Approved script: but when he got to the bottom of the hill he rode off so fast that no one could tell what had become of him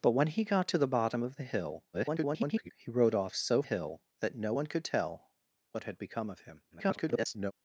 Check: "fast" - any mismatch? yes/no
yes